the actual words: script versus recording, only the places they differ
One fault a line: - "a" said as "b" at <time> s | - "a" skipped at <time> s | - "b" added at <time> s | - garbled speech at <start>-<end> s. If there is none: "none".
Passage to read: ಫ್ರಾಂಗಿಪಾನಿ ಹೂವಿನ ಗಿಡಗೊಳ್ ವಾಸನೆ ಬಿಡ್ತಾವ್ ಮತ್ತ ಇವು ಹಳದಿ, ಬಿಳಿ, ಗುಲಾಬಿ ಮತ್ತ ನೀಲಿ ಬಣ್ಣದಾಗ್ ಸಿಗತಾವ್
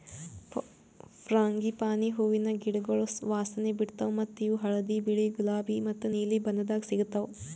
none